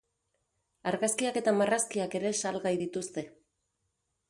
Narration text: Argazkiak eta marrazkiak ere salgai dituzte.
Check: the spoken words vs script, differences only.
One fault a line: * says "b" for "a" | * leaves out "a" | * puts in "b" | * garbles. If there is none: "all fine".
all fine